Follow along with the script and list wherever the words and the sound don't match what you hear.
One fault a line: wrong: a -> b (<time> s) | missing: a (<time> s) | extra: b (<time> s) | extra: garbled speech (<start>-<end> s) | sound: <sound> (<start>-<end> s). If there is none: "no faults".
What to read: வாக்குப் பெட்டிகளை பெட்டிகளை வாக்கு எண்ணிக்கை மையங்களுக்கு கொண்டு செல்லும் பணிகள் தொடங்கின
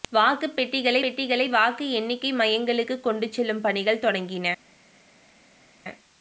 no faults